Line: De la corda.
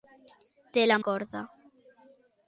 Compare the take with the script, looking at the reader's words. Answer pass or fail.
pass